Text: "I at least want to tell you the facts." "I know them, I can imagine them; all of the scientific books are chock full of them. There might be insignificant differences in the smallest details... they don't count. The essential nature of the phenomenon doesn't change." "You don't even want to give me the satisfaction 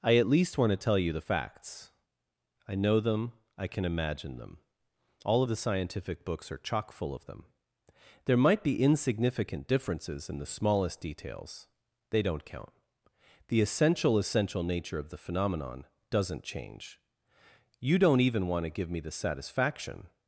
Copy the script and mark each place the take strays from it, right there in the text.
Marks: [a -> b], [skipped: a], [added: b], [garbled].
"I at least want to tell you the facts." "I know them, I can imagine them; all of the scientific books are chock full of them. There might be insignificant differences in the smallest details... they don't count. The essential [added: essential] nature of the phenomenon doesn't change." "You don't even want to give me the satisfaction